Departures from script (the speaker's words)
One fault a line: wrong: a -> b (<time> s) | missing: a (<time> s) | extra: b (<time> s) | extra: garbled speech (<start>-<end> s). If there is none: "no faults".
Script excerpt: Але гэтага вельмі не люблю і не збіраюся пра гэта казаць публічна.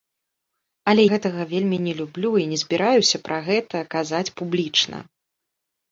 no faults